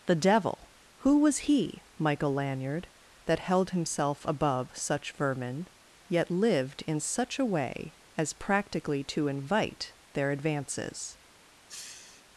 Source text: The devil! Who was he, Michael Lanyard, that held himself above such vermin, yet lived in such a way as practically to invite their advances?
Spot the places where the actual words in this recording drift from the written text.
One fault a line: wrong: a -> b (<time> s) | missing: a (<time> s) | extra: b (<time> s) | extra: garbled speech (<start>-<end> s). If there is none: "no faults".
no faults